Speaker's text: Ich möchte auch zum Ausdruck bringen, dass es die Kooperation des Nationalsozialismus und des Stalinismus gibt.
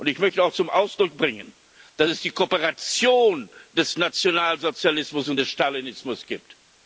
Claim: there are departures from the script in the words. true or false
false